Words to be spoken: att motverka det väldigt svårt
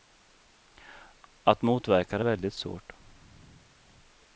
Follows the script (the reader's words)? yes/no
yes